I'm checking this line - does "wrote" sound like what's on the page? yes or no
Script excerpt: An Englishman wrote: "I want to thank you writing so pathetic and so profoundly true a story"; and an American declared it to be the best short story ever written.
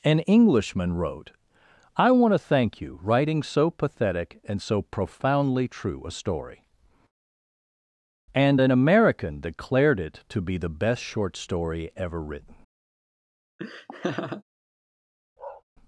yes